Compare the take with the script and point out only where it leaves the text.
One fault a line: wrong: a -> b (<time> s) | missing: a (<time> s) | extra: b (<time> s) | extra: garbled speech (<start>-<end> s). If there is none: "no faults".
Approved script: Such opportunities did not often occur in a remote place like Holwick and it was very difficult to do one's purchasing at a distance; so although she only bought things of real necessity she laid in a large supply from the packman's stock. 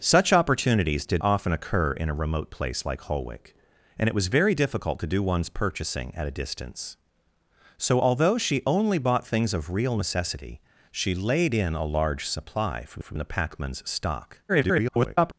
missing: not (1.2 s)
extra: from (13.0 s)
extra: garbled speech (14.5-15.3 s)